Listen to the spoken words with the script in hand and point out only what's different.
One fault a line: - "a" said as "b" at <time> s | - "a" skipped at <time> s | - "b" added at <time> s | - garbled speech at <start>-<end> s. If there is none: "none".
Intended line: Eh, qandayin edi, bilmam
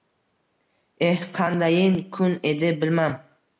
- "kun" added at 2.1 s